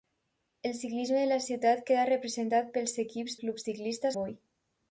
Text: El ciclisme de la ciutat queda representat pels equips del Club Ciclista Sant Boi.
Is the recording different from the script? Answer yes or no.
yes